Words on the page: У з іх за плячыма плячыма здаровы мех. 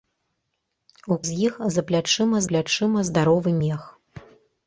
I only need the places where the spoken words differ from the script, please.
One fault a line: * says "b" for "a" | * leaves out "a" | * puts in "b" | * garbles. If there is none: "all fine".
all fine